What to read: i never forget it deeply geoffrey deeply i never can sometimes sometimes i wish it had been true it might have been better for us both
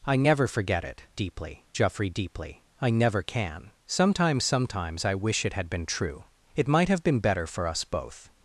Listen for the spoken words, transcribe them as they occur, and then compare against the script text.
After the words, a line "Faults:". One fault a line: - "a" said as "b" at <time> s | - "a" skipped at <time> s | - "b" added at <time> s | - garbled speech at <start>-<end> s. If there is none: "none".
i never forget it deeply geoffrey deeply i never can sometimes sometimes i wish it had been true it might have been better for us both
Faults:
none